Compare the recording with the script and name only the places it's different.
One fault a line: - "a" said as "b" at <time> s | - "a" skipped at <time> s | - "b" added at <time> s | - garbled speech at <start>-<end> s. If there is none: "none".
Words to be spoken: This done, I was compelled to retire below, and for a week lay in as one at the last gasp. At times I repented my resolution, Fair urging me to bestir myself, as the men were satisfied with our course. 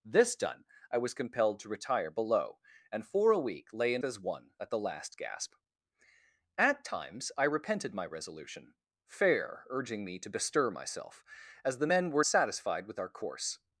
none